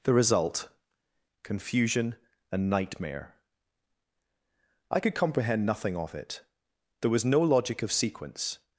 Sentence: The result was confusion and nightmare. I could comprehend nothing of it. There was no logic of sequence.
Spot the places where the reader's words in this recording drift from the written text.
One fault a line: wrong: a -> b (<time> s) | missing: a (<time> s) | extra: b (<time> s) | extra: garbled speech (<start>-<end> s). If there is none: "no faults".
missing: was (0.7 s)